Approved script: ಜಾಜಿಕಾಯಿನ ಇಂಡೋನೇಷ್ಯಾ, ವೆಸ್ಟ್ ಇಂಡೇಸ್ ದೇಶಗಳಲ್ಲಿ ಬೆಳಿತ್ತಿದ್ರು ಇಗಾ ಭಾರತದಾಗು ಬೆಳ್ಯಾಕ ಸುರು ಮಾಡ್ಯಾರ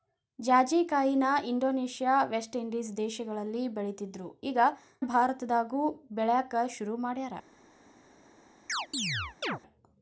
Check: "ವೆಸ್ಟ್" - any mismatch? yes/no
no